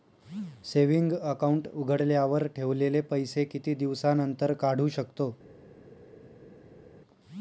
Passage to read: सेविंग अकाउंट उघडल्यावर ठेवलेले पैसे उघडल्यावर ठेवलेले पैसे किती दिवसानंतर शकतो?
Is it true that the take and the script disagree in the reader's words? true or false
true